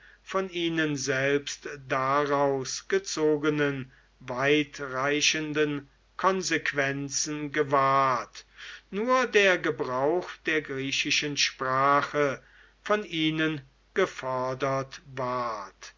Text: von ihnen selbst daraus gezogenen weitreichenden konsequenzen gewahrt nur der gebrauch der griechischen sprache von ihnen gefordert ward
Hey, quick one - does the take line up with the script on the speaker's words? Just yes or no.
yes